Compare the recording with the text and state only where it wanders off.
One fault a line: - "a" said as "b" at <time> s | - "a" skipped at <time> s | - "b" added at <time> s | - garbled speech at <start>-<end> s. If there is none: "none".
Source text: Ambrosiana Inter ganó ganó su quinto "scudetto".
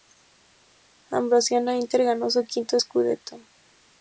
- "ganó" skipped at 2.3 s